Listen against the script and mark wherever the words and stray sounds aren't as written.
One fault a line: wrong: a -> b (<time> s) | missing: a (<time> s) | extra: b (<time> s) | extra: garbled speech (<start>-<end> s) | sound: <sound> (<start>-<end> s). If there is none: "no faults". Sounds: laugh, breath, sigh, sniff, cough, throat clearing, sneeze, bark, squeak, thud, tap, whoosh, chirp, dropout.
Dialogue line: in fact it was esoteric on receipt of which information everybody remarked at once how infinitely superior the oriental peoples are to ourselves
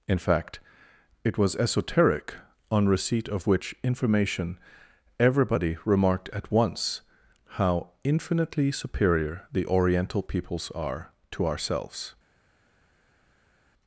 no faults